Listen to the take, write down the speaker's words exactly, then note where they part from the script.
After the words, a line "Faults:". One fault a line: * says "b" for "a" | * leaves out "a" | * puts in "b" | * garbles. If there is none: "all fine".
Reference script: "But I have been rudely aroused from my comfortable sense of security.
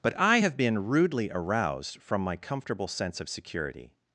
"But I have been rudely aroused from my comfortable sense of security.
Faults:
all fine